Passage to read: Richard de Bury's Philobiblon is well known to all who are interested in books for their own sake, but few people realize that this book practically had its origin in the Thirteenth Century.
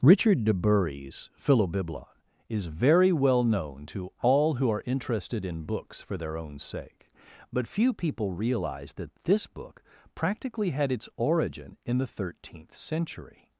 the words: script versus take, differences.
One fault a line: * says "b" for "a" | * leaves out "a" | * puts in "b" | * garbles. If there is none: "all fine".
* puts in "very"